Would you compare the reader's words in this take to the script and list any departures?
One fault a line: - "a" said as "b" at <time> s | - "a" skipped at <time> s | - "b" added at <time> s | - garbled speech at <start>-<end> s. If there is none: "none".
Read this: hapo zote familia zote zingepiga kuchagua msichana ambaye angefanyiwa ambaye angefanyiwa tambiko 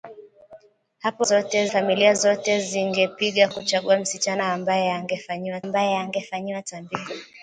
none